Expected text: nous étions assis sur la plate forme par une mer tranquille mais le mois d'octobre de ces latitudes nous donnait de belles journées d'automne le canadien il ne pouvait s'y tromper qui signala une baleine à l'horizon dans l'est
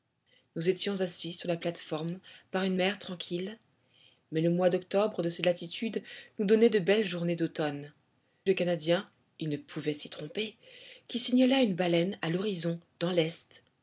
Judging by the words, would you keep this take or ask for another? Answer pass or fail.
pass